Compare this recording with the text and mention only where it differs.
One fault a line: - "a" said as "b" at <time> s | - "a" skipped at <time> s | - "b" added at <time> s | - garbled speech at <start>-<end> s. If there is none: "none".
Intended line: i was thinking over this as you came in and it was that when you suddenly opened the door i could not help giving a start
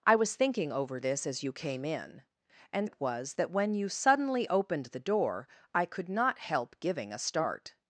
none